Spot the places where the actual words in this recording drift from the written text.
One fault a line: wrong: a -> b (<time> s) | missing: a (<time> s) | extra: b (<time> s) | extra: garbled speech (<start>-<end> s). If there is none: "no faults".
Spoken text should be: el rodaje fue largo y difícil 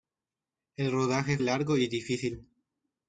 missing: fue (1.4 s)